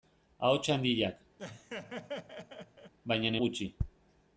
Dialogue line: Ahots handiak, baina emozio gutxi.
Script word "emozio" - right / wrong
wrong